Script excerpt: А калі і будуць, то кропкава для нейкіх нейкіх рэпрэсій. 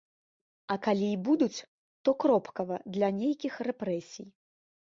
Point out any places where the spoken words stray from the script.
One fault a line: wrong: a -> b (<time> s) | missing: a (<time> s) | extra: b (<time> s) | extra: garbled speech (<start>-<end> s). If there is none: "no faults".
missing: нейкіх (3.5 s)